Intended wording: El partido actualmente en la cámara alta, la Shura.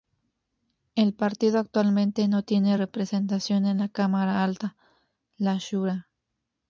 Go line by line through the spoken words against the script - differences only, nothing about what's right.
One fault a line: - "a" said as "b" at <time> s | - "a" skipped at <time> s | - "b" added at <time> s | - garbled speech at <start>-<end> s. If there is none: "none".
- "no tiene representación" added at 2.3 s